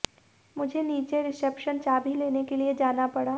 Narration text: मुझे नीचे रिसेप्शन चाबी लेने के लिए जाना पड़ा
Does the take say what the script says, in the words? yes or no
yes